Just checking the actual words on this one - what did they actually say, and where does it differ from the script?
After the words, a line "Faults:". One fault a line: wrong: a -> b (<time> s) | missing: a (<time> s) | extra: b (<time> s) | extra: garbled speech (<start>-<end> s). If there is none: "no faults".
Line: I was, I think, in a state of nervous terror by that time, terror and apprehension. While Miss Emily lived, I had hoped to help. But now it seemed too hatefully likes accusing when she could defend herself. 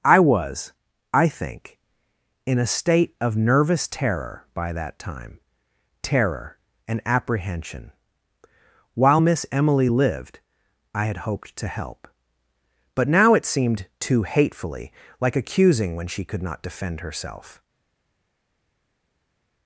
I was, I think, in a state of nervous terror by that time, terror and apprehension. While Miss Emily lived, I had hoped to help. But now it seemed too hatefully like accusing when she could not defend herself.
Faults:
wrong: likes -> like (15.2 s)
extra: not (16.4 s)